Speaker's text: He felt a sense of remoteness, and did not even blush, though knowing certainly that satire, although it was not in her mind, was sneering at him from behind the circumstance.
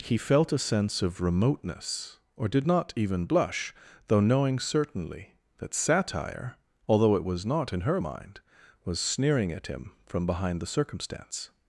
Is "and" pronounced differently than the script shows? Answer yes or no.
yes